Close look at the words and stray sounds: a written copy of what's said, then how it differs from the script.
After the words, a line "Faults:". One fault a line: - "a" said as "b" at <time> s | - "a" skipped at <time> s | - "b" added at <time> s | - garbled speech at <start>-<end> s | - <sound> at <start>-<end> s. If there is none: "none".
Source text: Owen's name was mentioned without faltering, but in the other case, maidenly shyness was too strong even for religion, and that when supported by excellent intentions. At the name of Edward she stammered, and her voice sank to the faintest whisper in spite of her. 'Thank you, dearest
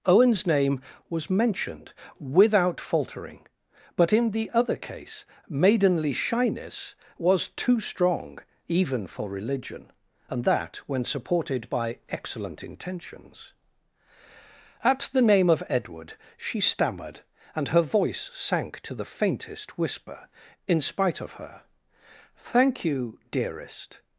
Owen's name was mentioned without faltering, but in the other case, maidenly shyness was too strong even for religion, and that when supported by excellent intentions. At the name of Edward she stammered, and her voice sank to the faintest whisper in spite of her. 'Thank you, dearest
Faults:
none